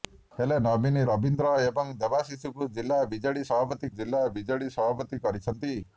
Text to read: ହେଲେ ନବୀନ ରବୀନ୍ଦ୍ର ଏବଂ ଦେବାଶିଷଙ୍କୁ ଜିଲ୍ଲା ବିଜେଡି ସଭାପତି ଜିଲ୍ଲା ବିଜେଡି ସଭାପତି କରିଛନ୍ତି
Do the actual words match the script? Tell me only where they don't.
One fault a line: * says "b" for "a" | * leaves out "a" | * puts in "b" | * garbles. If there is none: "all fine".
all fine